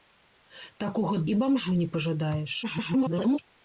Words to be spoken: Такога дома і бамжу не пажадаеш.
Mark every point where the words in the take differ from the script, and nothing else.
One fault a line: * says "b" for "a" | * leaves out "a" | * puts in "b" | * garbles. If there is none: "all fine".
* leaves out "дома"
* garbles